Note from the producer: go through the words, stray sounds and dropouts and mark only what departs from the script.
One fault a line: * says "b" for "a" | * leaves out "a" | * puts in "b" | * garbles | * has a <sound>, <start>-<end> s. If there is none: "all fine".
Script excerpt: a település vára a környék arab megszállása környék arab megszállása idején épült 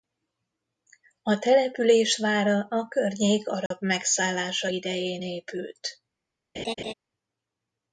* has a dropout, 3.7-3.7 s
* leaves out "környék arab megszállása"
* has a laugh, 6.5-6.9 s